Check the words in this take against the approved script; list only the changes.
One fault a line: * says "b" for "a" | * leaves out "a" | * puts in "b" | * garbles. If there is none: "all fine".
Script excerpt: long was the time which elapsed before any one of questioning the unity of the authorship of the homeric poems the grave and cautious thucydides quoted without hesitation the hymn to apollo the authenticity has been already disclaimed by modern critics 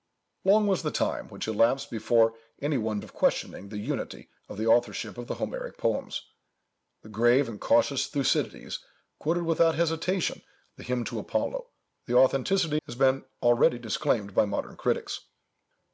all fine